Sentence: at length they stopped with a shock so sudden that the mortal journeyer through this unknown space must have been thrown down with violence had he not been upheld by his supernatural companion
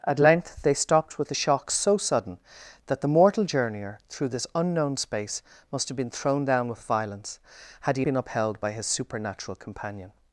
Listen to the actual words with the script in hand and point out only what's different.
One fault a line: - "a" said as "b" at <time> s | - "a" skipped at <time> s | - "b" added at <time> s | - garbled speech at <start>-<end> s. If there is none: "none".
- "not" skipped at 8.0 s